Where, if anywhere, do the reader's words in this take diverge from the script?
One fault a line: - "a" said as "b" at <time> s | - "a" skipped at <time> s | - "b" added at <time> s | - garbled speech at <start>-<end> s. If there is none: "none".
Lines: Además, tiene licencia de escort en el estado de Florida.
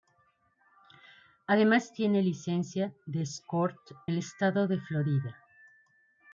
- "en" skipped at 3.8 s